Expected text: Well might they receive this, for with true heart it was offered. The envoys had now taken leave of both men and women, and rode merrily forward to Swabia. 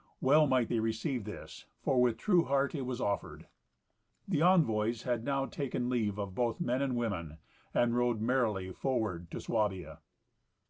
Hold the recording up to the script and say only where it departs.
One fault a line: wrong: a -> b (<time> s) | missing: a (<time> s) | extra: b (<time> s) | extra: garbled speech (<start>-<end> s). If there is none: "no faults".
no faults